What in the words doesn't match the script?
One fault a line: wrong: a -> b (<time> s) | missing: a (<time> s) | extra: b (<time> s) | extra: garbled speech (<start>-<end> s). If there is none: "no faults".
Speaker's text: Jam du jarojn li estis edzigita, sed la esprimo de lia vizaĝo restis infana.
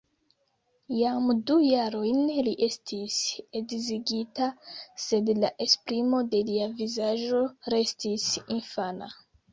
no faults